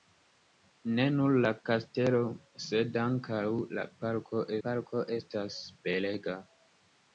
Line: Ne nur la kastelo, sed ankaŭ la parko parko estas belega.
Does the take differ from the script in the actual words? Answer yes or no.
no